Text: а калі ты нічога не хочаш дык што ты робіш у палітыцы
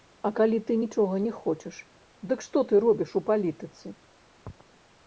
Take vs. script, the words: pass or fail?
pass